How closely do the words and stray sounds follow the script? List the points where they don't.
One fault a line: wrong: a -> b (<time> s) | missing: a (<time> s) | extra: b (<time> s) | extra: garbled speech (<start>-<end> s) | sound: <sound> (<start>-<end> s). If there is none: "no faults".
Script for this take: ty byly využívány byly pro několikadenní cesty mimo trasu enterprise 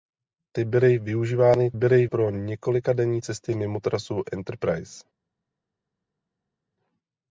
no faults